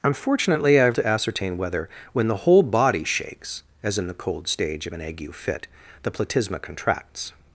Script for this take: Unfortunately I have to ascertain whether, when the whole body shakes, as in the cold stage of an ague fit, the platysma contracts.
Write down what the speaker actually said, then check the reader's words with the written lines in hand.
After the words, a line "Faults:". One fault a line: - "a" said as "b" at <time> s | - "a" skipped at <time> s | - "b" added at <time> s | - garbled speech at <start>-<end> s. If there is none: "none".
Unfortunately I have to ascertain whether, when the whole body shakes, as in the cold stage of an ague fit, the platysma contracts.
Faults:
none